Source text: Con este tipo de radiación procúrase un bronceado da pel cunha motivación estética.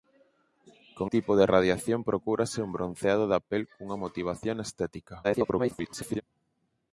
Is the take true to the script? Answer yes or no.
no